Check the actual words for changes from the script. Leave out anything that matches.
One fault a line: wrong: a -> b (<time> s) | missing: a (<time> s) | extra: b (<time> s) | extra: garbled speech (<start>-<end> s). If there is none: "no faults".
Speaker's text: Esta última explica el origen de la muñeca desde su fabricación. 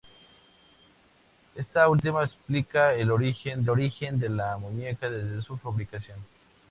extra: origen (3.7 s)